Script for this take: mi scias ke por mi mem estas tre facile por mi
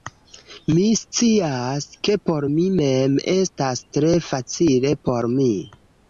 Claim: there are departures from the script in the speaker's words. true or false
false